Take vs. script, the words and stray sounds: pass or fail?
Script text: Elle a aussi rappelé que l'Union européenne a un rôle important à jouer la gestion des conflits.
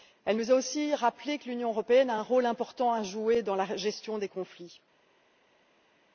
fail